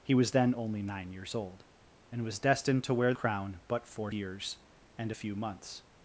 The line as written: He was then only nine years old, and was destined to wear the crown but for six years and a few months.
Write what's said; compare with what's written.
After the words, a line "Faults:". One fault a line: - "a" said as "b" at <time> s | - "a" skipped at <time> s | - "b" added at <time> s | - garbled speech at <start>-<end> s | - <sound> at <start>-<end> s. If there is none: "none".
He was then only nine years old, and was destined to wear crown but for years and a few months.
Faults:
- "the" skipped at 3.1 s
- "six" skipped at 4.1 s